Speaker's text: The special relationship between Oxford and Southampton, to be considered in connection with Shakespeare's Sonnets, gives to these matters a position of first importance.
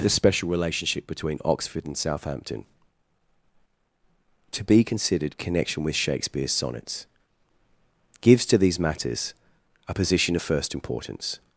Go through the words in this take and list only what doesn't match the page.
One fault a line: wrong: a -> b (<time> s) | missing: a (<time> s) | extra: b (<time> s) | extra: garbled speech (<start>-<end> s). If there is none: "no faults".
missing: in (5.4 s)